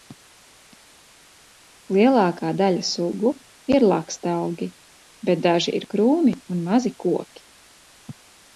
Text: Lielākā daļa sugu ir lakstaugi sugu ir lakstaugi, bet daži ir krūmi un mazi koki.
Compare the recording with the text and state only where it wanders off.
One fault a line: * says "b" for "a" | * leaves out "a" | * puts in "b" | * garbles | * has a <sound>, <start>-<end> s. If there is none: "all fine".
* leaves out "sugu ir lakstaugi"